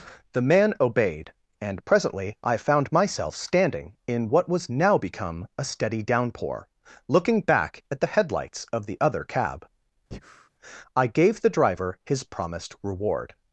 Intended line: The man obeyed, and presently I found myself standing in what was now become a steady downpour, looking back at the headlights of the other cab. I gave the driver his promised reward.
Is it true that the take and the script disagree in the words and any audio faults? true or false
true